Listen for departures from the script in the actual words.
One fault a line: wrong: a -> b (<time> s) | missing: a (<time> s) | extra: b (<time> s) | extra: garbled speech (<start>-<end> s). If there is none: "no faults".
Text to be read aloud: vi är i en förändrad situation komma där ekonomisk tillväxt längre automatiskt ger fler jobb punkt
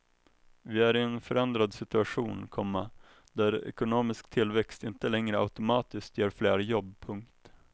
extra: inte (4.8 s)